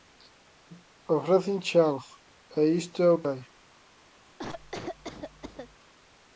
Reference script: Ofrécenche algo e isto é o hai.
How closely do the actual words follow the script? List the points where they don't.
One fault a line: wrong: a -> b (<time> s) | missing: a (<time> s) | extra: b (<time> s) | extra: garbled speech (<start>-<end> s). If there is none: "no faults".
no faults